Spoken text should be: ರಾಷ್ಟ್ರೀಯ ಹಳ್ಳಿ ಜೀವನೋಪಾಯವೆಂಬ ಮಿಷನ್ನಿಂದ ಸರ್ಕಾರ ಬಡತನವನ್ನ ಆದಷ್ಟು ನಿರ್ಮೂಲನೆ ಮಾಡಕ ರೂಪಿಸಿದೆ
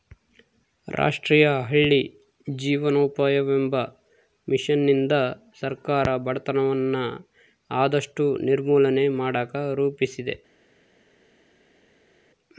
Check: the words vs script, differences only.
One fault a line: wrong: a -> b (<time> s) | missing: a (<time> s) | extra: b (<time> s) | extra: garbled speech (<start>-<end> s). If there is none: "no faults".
no faults